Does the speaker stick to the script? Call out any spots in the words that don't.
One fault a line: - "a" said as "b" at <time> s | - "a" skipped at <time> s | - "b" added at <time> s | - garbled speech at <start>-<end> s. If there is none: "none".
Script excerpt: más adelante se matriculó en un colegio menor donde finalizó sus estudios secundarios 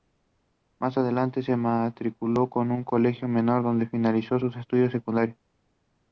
none